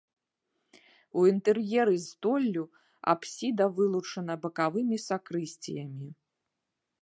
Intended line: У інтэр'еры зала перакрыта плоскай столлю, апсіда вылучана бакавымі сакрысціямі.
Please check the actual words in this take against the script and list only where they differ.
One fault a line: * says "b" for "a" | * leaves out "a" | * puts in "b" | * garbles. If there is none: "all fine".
* leaves out "зала перакрыта плоскай"